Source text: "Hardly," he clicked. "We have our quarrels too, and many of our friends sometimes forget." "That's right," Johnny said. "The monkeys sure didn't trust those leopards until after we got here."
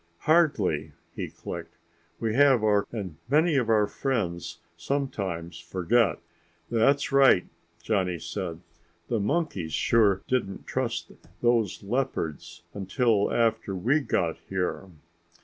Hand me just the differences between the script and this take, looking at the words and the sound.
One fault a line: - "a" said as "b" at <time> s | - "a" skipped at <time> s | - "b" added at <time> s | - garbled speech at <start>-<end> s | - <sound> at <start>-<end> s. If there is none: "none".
- "quarrels too" skipped at 2.8 s